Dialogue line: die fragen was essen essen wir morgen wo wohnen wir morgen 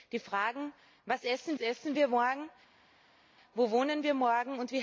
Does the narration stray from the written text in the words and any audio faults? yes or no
no